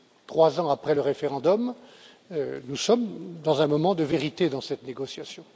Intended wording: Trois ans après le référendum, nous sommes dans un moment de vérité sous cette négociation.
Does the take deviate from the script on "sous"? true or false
true